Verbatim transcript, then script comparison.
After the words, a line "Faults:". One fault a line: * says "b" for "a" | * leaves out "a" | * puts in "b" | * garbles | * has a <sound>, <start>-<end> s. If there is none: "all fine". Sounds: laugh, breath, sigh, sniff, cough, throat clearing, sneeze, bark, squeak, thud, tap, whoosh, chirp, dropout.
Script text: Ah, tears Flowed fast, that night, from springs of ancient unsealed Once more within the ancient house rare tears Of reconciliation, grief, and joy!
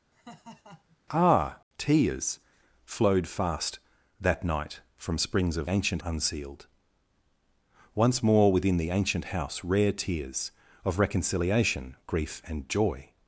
Ah, tears Flowed fast, that night, from springs of ancient unsealed Once more within the ancient house rare tears Of reconciliation, grief, and joy!
Faults:
* has a laugh, 0.1-1.0 s